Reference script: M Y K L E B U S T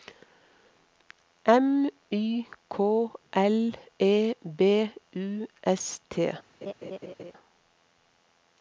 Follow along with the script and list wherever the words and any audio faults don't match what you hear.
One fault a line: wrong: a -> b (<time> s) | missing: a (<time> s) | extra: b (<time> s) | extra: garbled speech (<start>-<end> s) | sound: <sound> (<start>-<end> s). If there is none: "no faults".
sound: laugh (6.6-7.3 s)